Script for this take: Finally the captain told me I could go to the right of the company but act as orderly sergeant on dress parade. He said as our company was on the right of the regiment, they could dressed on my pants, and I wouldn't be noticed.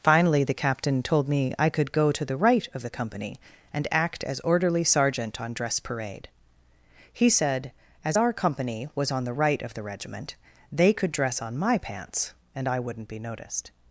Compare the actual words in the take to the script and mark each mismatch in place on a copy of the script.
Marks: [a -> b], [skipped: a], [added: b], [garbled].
Finally the captain told me I could go to the right of the company [but -> and] act as orderly sergeant on dress parade. He said as our company was on the right of the regiment, they could [dressed -> dress] on my pants, and I wouldn't be noticed.